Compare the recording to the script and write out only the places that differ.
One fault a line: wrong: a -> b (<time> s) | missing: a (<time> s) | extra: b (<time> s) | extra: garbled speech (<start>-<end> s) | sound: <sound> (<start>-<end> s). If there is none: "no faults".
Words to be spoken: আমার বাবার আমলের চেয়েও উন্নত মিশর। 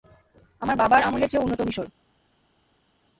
no faults